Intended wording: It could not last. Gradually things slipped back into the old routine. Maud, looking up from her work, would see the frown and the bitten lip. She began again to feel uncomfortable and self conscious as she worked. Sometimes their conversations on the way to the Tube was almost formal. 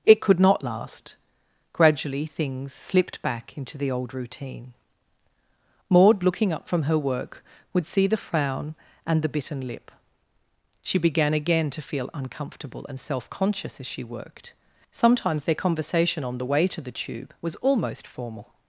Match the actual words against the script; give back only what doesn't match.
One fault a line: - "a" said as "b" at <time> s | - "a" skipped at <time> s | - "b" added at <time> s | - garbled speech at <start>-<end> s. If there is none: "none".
- "conversations" said as "conversation" at 15.6 s